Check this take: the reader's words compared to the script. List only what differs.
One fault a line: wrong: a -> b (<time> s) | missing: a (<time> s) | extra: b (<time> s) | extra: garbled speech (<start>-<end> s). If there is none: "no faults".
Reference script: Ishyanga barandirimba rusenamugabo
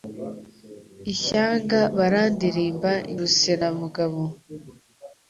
no faults